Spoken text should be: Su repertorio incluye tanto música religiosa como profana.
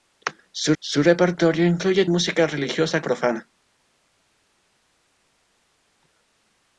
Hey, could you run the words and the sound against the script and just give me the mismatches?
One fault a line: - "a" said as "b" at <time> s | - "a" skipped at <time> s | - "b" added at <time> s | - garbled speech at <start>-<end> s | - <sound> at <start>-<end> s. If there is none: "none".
- "su" added at 0.8 s
- "tanto" skipped at 2.0 s
- "como" skipped at 3.0 s